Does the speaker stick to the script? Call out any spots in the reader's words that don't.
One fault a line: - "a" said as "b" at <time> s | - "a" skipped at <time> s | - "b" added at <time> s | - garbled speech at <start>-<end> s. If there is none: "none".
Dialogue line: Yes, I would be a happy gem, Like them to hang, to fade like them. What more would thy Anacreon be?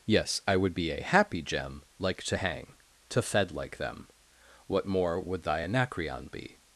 - "them" skipped at 2.2 s
- "fade" said as "fed" at 3.2 s